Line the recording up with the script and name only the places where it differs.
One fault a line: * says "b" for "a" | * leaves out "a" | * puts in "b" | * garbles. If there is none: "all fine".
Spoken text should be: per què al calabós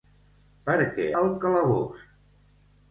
all fine